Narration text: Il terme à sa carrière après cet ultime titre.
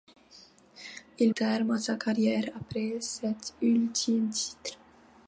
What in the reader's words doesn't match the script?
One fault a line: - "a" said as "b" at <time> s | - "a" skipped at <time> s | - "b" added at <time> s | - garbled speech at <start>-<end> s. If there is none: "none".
none